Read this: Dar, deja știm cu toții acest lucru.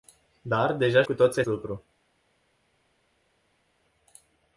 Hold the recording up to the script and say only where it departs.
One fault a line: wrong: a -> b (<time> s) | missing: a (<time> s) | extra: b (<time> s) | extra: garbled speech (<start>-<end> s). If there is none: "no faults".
missing: știm (1.0 s)
missing: acest (1.4 s)